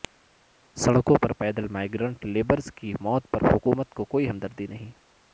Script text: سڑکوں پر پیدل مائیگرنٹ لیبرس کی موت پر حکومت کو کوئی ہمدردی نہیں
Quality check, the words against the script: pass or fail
pass